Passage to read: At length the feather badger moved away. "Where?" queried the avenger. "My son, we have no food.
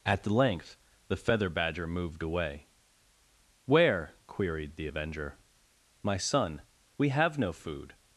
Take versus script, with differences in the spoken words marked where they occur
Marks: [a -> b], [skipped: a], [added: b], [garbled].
At length the feather badger moved away. "Where?" queried the avenger. "My son, we have no food.